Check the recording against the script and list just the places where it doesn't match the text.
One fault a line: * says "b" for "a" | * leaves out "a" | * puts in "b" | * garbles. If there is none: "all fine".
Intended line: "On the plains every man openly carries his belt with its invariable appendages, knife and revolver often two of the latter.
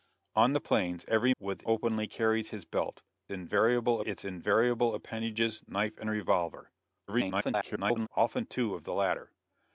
* says "with" for "man"
* says "invariable" for "with"
* garbles